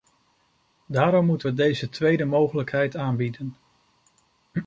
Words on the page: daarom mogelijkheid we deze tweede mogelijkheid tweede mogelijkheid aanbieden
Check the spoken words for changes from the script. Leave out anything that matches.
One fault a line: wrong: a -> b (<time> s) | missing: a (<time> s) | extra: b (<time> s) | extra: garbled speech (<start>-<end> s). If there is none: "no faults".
wrong: mogelijkheid -> moeten (1.2 s)
missing: tweede mogelijkheid (3.0 s)